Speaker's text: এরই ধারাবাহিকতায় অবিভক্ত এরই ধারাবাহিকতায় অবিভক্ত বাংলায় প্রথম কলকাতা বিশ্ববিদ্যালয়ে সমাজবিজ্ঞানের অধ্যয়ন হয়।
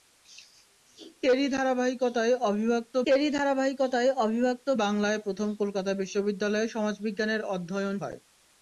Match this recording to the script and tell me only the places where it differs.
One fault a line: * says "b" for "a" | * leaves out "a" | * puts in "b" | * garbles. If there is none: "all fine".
all fine